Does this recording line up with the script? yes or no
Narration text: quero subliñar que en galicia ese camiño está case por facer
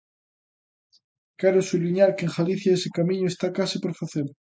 yes